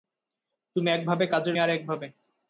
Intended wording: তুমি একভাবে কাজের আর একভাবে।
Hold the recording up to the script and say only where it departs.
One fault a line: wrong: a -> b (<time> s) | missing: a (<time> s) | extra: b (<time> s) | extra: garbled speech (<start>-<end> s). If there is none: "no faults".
no faults